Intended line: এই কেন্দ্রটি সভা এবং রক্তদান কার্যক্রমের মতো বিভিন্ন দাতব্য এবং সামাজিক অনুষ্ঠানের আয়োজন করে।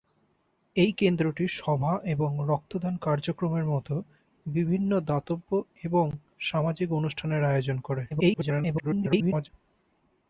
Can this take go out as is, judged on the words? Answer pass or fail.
fail